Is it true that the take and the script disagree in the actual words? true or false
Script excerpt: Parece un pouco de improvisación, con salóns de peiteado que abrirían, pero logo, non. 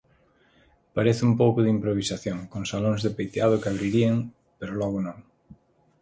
false